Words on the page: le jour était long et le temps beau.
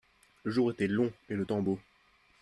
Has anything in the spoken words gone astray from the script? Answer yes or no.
no